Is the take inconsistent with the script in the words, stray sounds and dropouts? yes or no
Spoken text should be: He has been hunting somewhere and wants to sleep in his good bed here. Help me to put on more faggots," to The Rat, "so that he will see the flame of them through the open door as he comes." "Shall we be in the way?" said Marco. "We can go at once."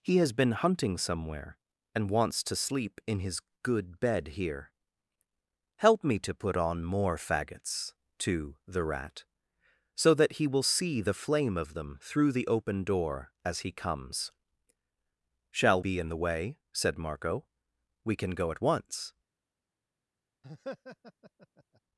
yes